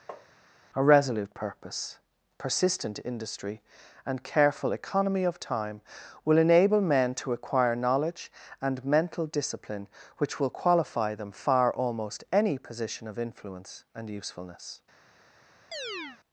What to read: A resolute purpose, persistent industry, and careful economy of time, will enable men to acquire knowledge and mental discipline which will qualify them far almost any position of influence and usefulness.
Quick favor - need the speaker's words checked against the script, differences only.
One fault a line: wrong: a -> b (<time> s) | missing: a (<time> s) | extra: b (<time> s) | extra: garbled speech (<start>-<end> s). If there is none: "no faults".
no faults